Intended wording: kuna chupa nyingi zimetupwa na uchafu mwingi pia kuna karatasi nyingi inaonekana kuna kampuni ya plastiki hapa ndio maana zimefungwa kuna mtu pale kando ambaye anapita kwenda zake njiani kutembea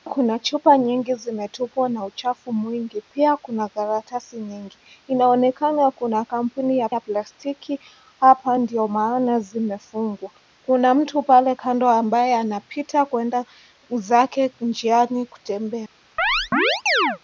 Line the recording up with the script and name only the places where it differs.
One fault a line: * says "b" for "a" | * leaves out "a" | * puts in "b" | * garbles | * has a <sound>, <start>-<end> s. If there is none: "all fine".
* puts in "ya"
* has a chirp, 16.2-17.2 s